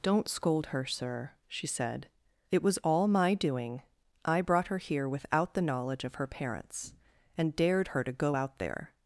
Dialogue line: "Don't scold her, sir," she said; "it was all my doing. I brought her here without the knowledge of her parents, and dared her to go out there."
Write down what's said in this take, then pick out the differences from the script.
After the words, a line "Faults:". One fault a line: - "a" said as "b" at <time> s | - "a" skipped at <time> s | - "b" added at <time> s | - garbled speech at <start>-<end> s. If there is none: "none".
"Don't scold her, sir," she said; "it was all my doing. I brought her here without the knowledge of her parents, and dared her to go out there."
Faults:
none